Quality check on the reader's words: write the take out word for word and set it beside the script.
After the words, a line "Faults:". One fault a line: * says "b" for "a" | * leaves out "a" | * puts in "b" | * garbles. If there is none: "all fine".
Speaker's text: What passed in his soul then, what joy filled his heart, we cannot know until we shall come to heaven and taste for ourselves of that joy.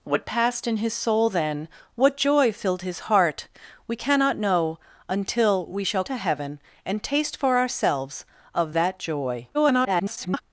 What passed in his soul then, what joy filled his heart, we cannot know until we shall to heaven and taste for ourselves of that joy. [garbled]
Faults:
* leaves out "come"
* garbles